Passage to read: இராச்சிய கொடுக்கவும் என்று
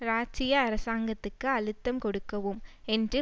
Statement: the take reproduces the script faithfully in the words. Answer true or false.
false